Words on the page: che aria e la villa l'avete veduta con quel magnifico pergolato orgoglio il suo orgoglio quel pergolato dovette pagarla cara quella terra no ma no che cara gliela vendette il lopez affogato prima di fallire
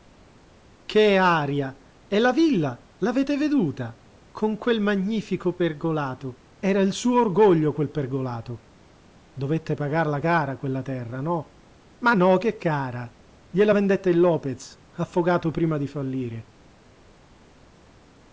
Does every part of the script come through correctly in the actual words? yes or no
no